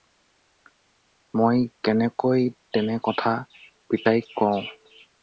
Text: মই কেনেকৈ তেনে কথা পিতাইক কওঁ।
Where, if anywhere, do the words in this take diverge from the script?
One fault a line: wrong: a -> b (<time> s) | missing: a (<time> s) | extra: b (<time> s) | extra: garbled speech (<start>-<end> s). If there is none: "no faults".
no faults